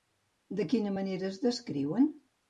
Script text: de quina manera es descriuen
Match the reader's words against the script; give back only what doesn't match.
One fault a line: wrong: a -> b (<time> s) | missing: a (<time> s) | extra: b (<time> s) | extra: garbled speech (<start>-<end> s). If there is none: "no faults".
no faults